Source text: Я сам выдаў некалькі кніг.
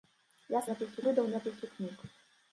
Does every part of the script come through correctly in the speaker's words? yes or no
no